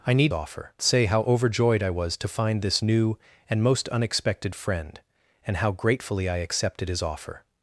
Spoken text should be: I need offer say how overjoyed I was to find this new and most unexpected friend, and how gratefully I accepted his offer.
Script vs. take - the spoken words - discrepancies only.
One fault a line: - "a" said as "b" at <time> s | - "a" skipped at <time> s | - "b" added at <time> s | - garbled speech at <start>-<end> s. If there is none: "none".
none